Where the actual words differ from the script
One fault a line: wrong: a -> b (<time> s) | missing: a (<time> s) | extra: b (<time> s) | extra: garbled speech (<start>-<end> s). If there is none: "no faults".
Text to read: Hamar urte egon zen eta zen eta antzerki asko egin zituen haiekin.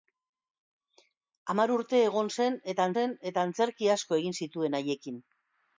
no faults